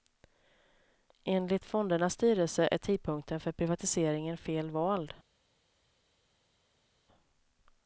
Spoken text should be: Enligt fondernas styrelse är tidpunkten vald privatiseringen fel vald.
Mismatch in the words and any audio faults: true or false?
true